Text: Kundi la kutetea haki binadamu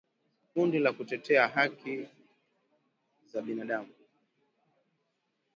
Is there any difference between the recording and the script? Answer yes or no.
yes